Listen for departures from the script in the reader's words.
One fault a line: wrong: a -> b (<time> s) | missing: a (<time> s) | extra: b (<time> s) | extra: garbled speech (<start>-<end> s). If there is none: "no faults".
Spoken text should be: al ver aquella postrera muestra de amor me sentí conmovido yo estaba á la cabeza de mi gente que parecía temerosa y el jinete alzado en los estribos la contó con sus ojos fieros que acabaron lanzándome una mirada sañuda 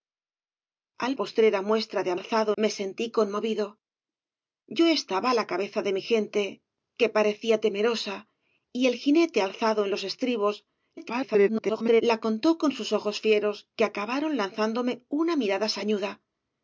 missing: ver aquella (1.1 s)
wrong: amor -> alzado (2.2 s)
extra: garbled speech (11.0-12.0 s)